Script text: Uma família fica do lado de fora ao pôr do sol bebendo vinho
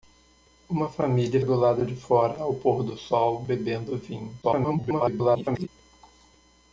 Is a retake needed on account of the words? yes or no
yes